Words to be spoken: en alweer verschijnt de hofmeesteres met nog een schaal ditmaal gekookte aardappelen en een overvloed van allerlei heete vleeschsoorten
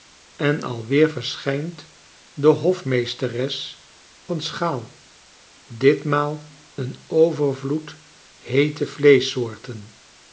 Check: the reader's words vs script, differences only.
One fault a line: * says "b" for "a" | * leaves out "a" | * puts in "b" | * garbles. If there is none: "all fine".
* leaves out "met nog"
* leaves out "gekookte aardappelen en"
* leaves out "van allerlei"